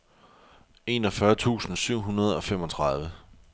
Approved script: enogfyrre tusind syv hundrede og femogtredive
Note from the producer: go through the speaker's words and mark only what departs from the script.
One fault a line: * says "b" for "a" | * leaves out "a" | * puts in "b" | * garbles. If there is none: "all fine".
all fine